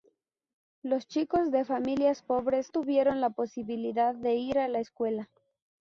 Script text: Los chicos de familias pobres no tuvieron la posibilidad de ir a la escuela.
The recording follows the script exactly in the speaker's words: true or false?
false